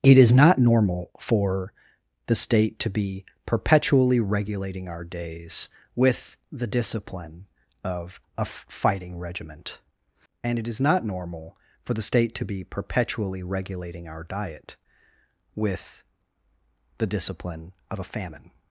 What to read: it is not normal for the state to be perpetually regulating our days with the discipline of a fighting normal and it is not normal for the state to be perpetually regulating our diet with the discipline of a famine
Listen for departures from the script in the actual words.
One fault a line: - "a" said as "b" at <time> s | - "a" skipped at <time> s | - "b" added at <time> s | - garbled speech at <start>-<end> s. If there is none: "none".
- "normal" said as "regiment" at 9.2 s